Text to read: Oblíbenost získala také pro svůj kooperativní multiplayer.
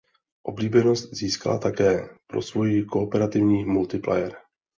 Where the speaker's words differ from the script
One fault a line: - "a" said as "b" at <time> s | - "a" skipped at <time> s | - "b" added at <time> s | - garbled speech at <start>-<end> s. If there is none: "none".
none